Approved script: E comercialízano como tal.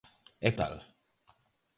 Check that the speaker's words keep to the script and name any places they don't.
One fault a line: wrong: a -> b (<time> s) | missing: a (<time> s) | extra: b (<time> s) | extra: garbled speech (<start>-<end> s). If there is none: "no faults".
missing: comercialízano como (0.5 s)